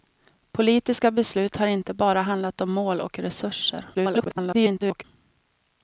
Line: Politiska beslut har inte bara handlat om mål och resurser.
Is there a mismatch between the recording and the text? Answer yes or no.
yes